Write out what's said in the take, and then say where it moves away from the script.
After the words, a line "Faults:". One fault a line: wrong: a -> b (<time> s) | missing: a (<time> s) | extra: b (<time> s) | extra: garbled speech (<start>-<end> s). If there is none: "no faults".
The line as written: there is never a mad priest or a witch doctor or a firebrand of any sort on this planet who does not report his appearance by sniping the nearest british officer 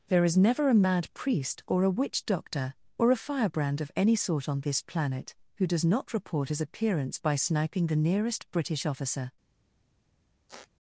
there is never a mad priest or a witch doctor or a firebrand of any sort on this planet who does not report his appearance by sniping the nearest british officer
Faults:
no faults